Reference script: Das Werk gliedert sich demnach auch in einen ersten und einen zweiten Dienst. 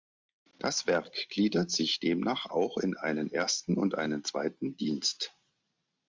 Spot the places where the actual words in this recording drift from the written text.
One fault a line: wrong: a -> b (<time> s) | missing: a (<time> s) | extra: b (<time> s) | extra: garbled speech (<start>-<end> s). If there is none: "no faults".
no faults